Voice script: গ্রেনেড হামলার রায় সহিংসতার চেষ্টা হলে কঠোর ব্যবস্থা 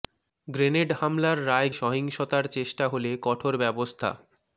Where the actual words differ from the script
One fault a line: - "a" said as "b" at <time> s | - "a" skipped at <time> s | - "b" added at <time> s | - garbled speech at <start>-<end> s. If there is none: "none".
none